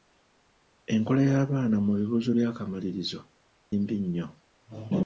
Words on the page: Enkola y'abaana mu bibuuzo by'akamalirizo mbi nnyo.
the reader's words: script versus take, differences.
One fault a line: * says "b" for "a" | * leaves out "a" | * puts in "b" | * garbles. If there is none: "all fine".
all fine